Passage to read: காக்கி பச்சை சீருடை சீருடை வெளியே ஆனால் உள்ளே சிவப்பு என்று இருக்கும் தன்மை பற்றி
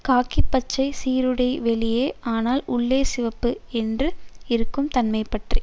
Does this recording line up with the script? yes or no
no